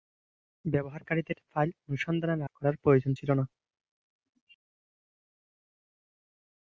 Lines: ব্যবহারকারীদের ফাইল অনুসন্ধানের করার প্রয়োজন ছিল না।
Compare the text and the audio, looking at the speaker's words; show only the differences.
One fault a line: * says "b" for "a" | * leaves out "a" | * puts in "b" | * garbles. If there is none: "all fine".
all fine